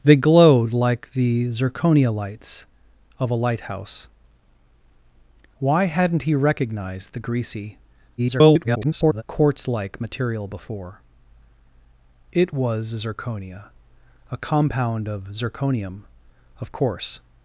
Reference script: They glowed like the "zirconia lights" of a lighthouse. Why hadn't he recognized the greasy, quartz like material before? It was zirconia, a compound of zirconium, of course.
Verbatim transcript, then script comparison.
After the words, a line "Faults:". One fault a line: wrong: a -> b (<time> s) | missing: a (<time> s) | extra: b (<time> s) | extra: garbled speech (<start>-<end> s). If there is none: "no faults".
They glowed like the "zirconia lights" of a lighthouse. Why hadn't he recognized the greasy, [garbled] quartz like material before? It was zirconia, a compound of zirconium, of course.
Faults:
extra: garbled speech (8.2-9.2 s)